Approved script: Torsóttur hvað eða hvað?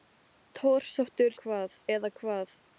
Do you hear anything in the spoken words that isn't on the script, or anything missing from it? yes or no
no